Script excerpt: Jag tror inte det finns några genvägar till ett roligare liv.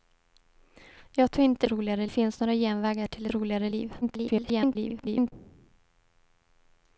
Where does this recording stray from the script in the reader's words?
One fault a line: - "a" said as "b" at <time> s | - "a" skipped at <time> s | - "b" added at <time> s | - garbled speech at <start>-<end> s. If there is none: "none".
- "det" said as "roligare" at 1.7 s
- "ett" skipped at 3.3 s
- garbled speech at 4.0-5.3 s